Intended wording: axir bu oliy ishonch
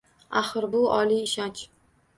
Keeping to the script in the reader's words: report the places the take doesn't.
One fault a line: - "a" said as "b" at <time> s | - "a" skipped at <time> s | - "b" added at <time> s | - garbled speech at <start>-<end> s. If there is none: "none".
none